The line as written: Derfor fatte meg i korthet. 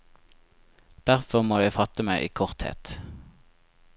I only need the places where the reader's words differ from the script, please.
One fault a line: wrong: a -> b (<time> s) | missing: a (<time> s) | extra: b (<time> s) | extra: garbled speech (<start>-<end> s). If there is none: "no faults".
extra: må jeg (1.4 s)